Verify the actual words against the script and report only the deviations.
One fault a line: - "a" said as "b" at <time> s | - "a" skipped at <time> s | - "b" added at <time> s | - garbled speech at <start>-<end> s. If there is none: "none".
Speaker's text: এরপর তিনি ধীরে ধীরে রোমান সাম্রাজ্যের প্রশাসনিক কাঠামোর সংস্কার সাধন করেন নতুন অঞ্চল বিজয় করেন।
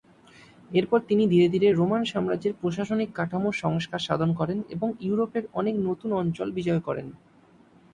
- "এবং ইউরোপের অনেক" added at 4.7 s